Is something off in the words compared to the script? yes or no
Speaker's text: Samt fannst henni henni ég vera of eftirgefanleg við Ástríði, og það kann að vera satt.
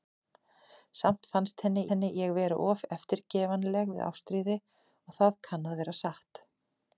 no